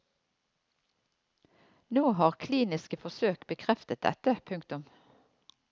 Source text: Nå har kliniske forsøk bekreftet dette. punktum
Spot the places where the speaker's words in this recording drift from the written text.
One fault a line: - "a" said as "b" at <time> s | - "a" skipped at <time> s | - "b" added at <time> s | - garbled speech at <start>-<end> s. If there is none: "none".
none